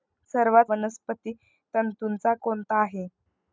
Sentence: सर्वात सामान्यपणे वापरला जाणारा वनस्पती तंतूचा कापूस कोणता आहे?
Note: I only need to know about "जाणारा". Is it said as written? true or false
false